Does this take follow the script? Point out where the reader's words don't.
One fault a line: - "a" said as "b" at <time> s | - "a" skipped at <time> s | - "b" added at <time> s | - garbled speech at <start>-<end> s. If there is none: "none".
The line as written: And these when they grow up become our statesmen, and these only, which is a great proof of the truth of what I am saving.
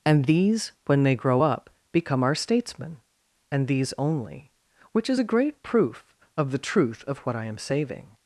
none